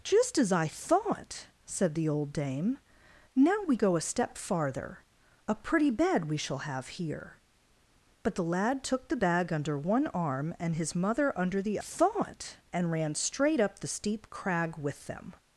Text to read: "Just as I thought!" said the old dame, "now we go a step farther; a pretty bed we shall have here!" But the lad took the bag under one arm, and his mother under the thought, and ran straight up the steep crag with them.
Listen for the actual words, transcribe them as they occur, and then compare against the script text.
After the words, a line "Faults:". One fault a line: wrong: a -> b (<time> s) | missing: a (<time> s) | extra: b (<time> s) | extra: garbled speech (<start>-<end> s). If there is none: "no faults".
"Just as I thought!" said the old dame, "now we go a step farther; a pretty bed we shall have here!" But the lad took the bag under one arm, and his mother under the thought, and ran straight up the steep crag with them.
Faults:
no faults